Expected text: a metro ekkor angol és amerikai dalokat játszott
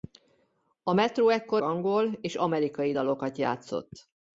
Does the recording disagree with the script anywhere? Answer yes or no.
no